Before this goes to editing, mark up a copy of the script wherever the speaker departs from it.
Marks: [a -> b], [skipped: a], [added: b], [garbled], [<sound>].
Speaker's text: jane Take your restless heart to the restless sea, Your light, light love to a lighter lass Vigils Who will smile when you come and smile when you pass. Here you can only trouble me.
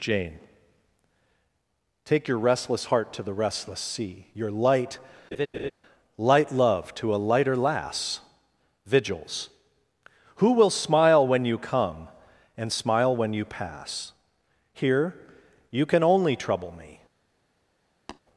jane Take your restless heart to the restless sea, Your light, [laugh] light love to a lighter lass Vigils Who will smile when you come and smile when you pass. Here you can only trouble me. [tap]